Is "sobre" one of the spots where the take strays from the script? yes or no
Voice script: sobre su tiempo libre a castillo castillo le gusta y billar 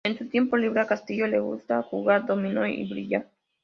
yes